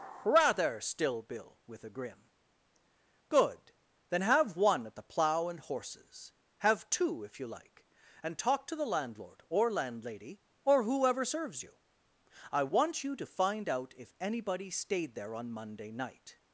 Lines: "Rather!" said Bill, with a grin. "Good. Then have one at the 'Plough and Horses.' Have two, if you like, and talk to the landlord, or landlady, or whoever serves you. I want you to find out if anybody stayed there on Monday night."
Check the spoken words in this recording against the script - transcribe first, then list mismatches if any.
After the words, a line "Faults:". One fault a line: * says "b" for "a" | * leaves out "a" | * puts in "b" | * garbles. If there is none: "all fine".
"Rather!" still Bill, with a grin. "Good. Then have one at the 'Plough and Horses.' Have two, if you like, and talk to the landlord, or landlady, or whoever serves you. I want you to find out if anybody stayed there on Monday night."
Faults:
* says "still" for "said"